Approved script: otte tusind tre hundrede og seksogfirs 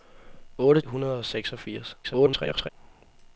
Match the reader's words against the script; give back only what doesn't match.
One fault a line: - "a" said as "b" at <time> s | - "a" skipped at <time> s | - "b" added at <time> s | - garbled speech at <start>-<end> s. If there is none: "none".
- "tusind tre" skipped at 0.8 s
- garbled speech at 2.0-2.7 s